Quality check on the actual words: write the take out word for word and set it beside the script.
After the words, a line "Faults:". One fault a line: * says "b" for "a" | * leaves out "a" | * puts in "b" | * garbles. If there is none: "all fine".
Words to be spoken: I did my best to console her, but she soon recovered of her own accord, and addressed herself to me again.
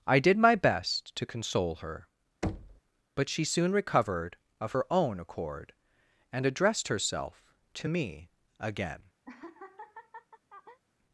I did my best to console her, but she soon recovered of her own accord, and addressed herself to me again.
Faults:
all fine